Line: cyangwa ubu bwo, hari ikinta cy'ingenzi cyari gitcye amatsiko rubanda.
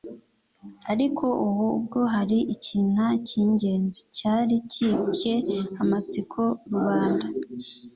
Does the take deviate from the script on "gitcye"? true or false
false